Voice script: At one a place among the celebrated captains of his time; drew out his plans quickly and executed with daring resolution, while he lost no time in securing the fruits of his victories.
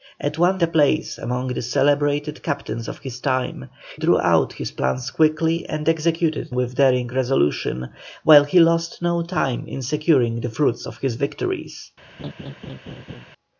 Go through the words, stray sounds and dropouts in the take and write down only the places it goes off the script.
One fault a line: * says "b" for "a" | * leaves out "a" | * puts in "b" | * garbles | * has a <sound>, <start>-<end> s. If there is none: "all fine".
* has a laugh, 12.2-13.3 s